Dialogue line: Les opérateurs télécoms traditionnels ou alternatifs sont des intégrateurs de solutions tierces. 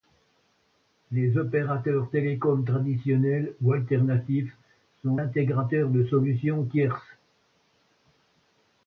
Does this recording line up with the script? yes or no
no